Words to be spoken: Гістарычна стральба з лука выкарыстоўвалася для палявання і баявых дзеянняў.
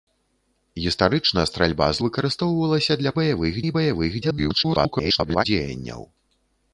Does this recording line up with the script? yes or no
no